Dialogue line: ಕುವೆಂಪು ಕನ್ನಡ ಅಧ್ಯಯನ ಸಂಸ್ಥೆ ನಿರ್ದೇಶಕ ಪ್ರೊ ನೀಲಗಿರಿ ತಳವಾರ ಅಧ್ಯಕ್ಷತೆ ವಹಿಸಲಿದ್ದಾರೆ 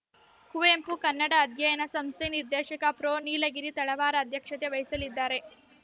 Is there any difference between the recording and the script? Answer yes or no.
no